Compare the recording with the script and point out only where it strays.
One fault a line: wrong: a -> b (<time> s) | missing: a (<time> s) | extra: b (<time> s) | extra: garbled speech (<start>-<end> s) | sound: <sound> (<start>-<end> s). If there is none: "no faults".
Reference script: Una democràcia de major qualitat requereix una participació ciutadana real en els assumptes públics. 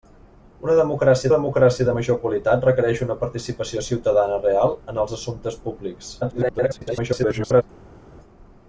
extra: democràcia (1.3 s)
extra: garbled speech (6.2-7.6 s)